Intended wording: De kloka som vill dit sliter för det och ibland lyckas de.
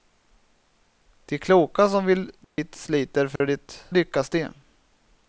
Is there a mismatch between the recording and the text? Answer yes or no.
yes